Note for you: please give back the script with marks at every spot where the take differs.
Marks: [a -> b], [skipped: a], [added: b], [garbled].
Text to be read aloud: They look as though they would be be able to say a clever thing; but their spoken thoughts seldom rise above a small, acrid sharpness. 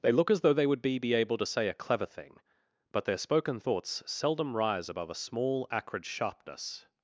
They look as though they would be be able to say a clever thing; but their spoken thoughts seldom rise above a small, acrid sharpness.